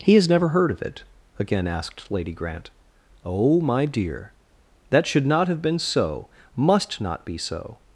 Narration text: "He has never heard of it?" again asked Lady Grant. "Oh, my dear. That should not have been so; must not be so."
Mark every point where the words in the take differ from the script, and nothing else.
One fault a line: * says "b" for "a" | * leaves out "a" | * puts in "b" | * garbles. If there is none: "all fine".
all fine